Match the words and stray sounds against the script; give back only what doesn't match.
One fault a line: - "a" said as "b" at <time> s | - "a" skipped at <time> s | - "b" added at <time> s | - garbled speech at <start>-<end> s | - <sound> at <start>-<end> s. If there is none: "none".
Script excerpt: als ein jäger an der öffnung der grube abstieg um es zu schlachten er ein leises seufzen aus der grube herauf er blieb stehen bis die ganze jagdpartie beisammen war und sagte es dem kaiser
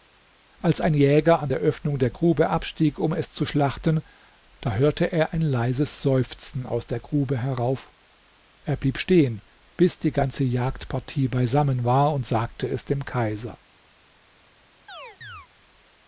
- "da hörte" added at 4.6 s
- chirp at 14.9-15.5 s